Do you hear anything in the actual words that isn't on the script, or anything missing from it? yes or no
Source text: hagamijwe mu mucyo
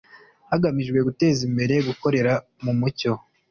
yes